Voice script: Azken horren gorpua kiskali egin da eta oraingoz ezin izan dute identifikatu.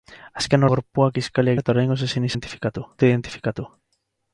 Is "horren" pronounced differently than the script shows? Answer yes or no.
yes